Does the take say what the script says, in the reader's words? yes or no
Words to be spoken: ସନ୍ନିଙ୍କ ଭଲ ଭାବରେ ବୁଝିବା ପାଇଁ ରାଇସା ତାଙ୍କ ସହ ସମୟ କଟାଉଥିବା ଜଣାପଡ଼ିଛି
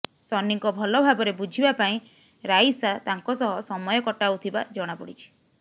yes